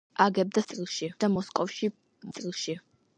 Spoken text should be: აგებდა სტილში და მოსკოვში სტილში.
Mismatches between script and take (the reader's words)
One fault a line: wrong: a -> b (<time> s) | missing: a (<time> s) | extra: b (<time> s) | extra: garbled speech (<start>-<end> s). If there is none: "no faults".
no faults